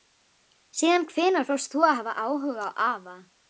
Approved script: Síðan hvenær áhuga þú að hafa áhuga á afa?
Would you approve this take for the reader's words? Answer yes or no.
no